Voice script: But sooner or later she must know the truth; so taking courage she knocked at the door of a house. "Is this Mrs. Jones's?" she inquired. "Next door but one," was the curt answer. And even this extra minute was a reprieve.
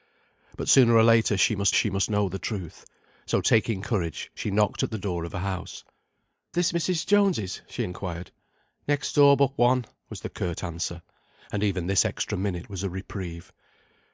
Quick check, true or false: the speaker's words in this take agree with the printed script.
false